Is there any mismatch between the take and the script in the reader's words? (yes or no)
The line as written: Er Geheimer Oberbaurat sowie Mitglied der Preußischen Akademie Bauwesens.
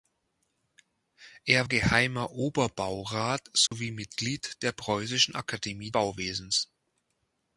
no